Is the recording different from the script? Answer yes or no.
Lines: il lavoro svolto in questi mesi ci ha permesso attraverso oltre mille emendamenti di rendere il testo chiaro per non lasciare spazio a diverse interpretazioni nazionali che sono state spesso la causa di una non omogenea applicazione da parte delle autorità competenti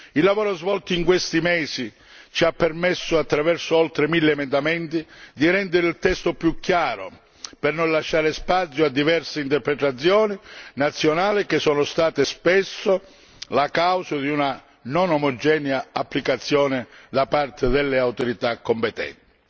yes